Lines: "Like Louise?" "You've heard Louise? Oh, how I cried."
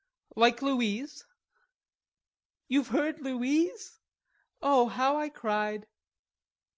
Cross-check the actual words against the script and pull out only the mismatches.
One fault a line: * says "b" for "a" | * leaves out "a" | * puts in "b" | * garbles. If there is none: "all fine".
all fine